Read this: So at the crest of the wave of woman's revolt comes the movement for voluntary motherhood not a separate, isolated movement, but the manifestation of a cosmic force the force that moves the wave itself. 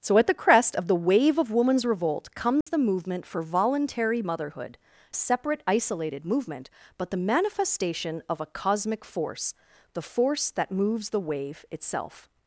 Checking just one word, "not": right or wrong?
wrong